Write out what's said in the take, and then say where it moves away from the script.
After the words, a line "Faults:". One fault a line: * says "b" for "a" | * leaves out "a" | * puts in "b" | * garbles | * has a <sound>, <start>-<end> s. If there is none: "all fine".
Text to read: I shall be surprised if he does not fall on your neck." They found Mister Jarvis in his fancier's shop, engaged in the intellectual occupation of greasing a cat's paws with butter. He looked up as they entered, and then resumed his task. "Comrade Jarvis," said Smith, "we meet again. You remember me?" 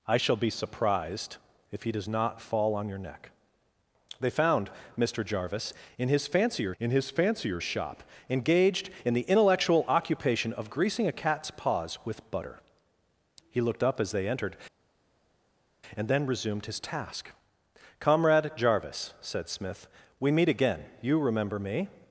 I shall be surprised if he does not fall on your neck." They found Mister Jarvis in his fancier's in his fancier's shop, engaged in the intellectual occupation of greasing a cat's paws with butter. He looked up as they entered, and then resumed his task. "Comrade Jarvis," said Smith, "we meet again. You remember me?"
Faults:
* puts in "in his fancier's"